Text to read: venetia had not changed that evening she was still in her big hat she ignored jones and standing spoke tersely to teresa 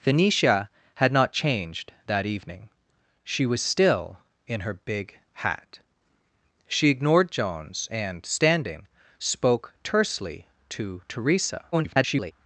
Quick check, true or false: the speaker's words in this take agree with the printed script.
false